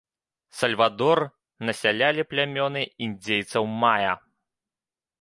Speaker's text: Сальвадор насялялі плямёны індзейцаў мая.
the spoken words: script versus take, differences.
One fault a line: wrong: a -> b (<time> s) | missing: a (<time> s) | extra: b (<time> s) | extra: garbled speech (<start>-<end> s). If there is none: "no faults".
no faults